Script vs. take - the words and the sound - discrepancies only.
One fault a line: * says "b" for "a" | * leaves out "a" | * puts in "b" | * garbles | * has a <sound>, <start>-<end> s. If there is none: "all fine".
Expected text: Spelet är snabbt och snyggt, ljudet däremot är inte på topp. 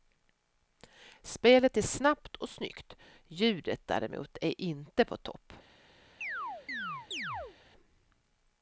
* has a chirp, 6.2-7.6 s